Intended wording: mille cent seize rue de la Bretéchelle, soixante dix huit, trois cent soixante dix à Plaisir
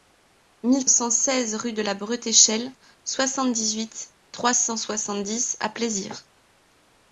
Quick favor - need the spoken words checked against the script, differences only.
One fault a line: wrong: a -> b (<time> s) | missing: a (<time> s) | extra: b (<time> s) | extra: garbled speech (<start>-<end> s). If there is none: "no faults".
no faults